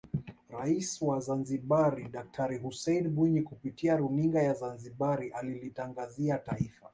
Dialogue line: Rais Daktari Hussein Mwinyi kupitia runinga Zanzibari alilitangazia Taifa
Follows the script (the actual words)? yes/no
no